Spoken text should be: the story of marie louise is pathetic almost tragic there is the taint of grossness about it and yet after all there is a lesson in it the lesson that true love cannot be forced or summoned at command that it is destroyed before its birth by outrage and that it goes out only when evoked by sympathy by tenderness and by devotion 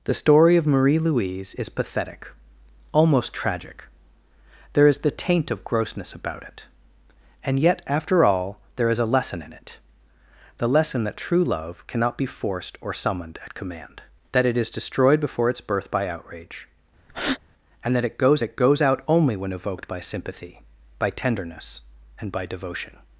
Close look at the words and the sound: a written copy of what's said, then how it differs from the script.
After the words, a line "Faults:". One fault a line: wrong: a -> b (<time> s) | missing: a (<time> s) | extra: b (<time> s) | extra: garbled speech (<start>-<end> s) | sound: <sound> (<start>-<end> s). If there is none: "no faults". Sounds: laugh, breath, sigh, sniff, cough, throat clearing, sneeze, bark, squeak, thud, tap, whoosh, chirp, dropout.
the story of marie louise is pathetic almost tragic there is the taint of grossness about it and yet after all there is a lesson in it the lesson that true love cannot be forced or summoned at command that it is destroyed before its birth by outrage and that it goes it goes out only when evoked by sympathy by tenderness and by devotion
Faults:
sound: breath (17.1-17.4 s)
extra: it goes (18.4 s)